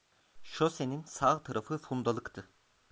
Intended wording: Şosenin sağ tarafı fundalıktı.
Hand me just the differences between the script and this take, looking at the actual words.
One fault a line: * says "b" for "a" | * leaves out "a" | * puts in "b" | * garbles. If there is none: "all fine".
all fine